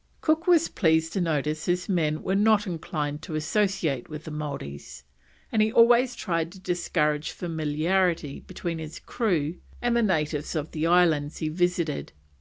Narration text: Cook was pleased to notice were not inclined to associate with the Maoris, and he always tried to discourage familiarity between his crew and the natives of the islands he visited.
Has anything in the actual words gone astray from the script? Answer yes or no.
yes